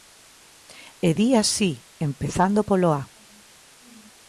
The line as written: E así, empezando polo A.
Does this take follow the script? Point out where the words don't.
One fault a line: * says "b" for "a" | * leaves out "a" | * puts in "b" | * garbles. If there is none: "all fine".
* puts in "di"